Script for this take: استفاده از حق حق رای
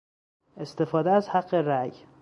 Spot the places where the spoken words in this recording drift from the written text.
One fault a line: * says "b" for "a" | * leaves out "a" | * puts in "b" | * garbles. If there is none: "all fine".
* leaves out "حق"